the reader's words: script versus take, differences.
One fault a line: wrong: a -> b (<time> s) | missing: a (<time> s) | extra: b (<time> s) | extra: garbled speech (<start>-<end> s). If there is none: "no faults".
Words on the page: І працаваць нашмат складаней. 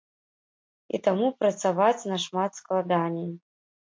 extra: таму (1.1 s)